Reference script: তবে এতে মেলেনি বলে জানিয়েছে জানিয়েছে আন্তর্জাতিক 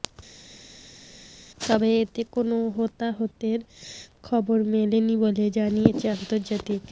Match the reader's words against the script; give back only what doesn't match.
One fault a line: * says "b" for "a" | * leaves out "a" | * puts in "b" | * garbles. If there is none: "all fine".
* puts in "কোনো হতাহতের খবর"
* leaves out "জানিয়েছে"